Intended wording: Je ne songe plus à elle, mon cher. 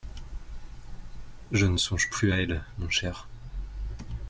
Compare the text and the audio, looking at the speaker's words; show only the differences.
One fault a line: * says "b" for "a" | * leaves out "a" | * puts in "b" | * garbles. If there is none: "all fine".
all fine